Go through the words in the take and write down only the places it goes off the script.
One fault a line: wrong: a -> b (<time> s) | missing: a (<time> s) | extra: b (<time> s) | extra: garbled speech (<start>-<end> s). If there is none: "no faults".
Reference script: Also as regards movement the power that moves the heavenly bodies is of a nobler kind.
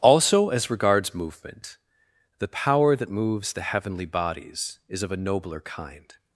no faults